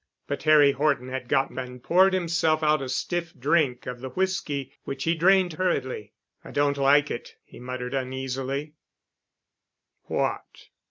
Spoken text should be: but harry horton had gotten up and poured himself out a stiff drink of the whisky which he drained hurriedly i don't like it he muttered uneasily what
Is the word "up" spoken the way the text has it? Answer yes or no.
no